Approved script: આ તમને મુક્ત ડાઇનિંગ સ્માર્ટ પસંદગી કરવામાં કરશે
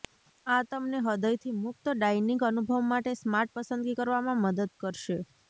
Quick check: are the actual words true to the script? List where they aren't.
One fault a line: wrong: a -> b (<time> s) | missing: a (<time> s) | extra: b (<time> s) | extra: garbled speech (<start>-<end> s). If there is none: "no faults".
extra: હૃદયથી (1.0 s)
extra: અનુભવ માટે (2.5 s)
extra: મદદ (4.4 s)